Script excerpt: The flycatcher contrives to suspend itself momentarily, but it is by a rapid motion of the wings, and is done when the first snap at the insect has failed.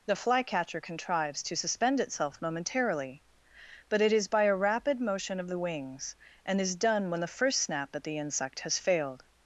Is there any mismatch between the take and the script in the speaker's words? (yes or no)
no